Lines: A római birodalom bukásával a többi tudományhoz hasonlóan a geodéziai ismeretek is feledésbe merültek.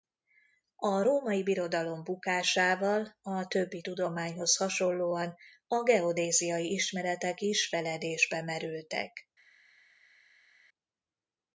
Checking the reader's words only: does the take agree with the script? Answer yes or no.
yes